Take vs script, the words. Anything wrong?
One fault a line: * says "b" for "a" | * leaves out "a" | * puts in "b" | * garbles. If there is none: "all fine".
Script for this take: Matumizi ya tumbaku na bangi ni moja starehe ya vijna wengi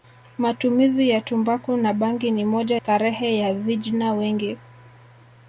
all fine